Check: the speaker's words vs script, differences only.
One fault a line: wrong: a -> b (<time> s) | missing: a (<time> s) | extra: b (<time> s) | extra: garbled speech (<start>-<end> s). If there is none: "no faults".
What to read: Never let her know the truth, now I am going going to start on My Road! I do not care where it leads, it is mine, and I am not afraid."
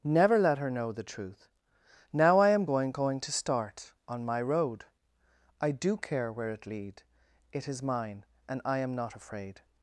missing: not (6.0 s)
wrong: leads -> lead (6.7 s)